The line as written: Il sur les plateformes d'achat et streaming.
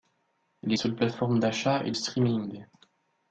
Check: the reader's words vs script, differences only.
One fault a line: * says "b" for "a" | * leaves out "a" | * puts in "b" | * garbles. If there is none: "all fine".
all fine